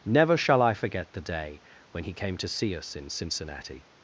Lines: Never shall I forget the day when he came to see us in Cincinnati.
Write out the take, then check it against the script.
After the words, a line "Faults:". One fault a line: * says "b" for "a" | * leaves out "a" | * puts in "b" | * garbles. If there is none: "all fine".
Never shall I forget the day when he came to see us in Cincinnati.
Faults:
all fine